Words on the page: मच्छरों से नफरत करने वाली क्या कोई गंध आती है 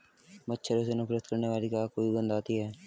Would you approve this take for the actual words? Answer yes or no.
yes